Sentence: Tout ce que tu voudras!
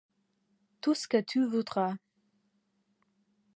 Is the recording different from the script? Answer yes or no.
no